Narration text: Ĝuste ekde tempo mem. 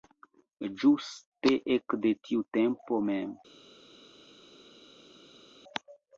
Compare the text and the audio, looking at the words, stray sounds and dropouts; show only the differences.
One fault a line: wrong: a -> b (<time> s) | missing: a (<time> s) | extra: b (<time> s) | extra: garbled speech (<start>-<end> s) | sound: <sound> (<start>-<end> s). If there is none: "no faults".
extra: tiu (2.3 s)